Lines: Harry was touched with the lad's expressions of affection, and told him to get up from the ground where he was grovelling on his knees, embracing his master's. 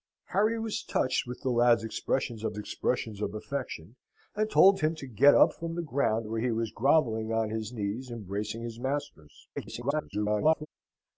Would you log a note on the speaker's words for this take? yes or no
yes